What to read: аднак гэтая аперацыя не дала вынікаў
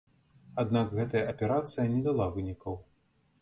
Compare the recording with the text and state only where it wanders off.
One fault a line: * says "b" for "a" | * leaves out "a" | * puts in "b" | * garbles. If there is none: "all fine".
all fine